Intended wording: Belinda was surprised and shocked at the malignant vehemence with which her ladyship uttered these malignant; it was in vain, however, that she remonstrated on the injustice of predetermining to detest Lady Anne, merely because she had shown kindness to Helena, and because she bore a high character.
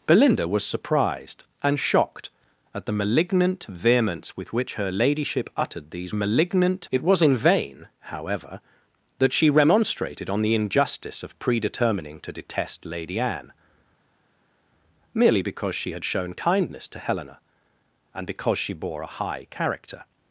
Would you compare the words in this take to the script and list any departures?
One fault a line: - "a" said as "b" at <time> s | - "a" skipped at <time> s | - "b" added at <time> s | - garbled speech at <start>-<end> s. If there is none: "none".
none